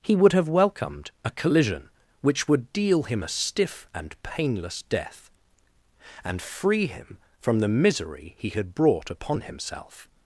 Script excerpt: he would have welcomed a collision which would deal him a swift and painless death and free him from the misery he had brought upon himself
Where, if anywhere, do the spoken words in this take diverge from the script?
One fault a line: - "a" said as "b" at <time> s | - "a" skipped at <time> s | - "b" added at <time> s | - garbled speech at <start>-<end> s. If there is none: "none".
- "swift" said as "stiff" at 3.3 s